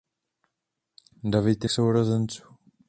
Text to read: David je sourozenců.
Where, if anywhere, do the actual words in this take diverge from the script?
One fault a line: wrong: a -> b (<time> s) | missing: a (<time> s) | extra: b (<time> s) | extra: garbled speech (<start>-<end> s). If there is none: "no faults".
no faults